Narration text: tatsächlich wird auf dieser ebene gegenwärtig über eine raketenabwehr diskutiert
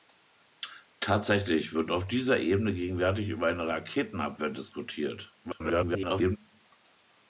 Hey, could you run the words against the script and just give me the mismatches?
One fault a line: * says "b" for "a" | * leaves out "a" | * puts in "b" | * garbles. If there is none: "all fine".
* garbles